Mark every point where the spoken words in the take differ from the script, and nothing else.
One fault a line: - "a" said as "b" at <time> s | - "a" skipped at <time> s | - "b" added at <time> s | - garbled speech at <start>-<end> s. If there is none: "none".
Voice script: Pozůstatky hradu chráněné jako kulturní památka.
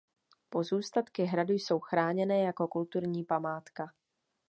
- "jsou" added at 1.5 s